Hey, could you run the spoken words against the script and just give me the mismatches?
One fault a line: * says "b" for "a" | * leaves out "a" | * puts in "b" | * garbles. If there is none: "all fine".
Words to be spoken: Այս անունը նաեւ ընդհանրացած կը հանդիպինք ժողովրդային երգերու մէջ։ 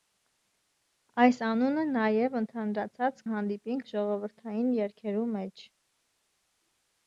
* leaves out "կը"